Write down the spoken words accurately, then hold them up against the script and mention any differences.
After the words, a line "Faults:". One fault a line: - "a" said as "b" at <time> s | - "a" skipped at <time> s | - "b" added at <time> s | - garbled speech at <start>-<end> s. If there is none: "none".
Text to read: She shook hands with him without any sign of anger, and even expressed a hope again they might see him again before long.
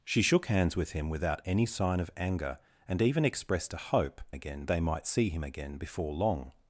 She shook hands with him without any sign of anger, and even expressed a hope again they might see him again before long.
Faults:
none